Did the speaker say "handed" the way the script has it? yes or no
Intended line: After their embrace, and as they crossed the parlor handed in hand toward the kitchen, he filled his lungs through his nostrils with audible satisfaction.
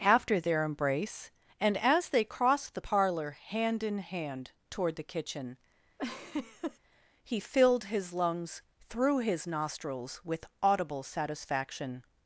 no